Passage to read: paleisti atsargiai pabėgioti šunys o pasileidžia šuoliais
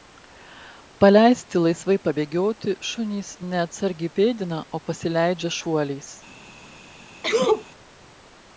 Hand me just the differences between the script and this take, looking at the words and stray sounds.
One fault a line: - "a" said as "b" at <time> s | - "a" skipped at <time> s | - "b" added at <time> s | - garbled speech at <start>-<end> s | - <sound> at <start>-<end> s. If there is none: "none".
- "atsargiai" said as "laisvai" at 1.6 s
- "ne atsargiai pėdina" added at 3.5 s
- sneeze at 7.2-7.7 s